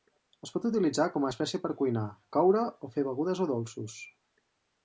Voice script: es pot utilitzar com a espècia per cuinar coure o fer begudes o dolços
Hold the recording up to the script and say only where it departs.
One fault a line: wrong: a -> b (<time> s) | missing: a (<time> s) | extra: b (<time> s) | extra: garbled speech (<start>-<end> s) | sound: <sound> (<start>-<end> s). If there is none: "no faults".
no faults